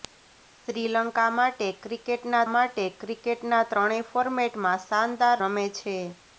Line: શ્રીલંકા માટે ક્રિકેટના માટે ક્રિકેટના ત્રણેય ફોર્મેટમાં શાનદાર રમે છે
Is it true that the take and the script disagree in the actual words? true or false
false